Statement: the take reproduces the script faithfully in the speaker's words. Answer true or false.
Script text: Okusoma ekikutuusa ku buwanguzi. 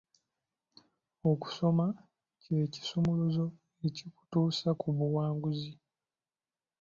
false